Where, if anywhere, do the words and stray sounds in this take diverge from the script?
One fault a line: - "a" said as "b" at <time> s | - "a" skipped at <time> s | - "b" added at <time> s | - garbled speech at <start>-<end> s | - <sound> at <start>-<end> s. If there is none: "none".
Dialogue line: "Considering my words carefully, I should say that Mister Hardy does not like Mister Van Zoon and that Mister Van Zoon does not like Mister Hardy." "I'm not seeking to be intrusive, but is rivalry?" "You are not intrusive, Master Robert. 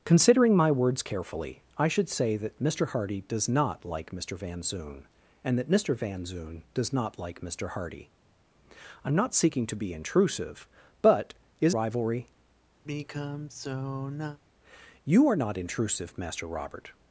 - sigh at 12.8-14.4 s